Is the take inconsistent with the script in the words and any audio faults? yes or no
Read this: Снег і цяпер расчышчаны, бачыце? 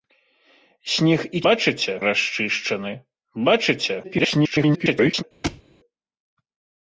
yes